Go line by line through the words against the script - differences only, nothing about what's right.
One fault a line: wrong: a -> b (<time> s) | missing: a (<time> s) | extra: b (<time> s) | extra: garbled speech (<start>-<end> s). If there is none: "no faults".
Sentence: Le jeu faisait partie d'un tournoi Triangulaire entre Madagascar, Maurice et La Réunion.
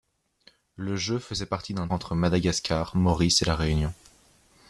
missing: tournoi Triangulaire (1.9 s)